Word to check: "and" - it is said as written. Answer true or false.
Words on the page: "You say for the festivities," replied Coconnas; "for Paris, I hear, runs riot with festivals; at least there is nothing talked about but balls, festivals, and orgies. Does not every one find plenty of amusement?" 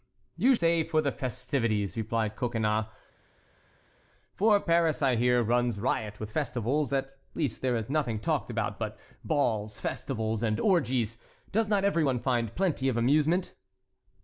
true